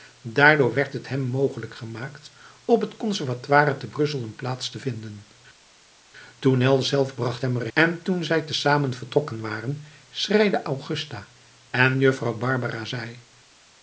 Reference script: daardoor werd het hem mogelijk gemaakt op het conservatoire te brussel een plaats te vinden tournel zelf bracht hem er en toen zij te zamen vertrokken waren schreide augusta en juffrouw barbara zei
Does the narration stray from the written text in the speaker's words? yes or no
no